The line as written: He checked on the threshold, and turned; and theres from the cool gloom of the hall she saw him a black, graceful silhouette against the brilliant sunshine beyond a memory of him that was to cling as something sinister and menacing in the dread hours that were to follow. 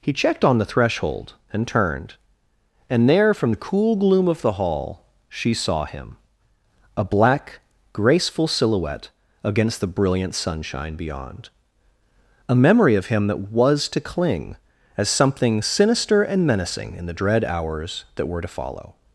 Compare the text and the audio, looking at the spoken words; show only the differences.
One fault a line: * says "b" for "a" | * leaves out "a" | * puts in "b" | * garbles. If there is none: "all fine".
* says "there" for "theres"